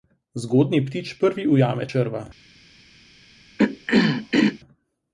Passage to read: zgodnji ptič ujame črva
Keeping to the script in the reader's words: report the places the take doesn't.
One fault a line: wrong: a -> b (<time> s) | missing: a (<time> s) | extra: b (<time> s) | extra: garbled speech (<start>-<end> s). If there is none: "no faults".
extra: prvi (1.2 s)